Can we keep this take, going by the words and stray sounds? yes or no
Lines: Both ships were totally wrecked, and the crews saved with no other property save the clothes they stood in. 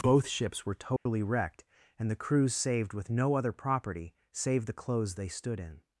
no